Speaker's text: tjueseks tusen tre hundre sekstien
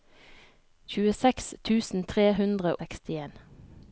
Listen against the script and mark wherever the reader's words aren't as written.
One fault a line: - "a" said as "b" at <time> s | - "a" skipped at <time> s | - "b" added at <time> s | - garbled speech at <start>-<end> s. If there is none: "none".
none